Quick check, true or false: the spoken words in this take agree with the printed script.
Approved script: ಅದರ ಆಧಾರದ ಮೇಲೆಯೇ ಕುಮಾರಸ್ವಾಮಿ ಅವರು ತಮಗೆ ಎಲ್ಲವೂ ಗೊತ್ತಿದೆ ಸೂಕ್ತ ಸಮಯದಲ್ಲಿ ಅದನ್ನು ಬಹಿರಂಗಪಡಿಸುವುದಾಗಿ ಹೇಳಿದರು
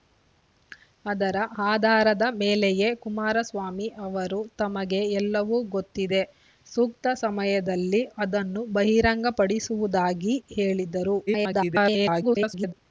false